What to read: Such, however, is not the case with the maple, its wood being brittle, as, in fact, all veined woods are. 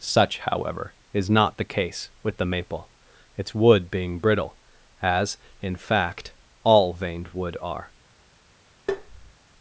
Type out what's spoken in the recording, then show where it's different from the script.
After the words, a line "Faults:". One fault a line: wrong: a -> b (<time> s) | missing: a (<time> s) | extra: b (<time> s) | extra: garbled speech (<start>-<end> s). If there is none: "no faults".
Such, however, is not the case with the maple, its wood being brittle, as, in fact, all veined wood are.
Faults:
wrong: woods -> wood (7.3 s)